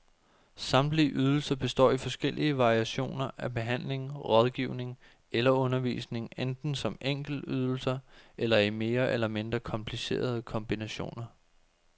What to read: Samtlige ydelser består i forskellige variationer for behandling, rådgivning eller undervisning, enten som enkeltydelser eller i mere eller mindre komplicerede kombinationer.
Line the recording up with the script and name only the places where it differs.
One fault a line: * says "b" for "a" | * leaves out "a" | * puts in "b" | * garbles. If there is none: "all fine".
* says "af" for "for"